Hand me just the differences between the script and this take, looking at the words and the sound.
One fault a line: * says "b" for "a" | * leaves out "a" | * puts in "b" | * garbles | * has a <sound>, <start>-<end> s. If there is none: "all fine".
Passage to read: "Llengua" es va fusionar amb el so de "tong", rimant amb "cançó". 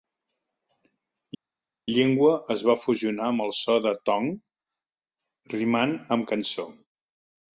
all fine